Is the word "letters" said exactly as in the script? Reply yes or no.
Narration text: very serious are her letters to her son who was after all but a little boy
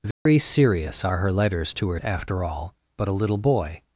yes